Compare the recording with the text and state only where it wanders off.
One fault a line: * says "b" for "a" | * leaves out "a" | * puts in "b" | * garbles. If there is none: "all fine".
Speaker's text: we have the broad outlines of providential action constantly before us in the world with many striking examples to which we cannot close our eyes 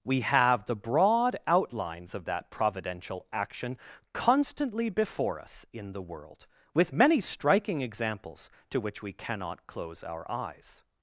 * puts in "that"